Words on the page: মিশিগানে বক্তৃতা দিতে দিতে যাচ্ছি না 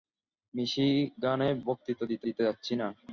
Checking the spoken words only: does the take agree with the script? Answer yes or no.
yes